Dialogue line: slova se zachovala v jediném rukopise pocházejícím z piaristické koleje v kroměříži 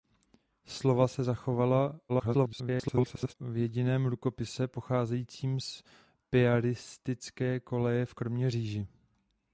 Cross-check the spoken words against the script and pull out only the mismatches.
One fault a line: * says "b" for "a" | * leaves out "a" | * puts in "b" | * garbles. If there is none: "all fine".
* garbles